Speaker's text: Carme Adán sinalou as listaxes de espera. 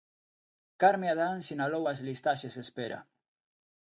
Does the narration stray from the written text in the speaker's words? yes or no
no